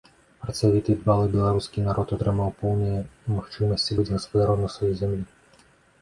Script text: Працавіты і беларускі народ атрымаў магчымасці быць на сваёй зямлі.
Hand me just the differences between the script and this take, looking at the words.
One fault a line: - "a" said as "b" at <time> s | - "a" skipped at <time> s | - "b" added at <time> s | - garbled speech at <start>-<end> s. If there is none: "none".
- "дбалы" added at 1.0 s
- "поўныя" added at 2.6 s
- "гаспадаром" added at 4.1 s